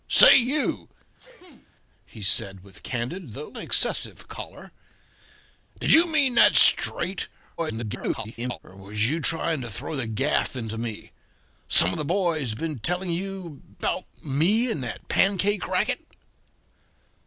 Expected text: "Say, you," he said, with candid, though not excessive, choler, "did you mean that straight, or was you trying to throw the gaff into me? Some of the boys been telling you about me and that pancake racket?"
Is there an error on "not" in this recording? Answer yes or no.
yes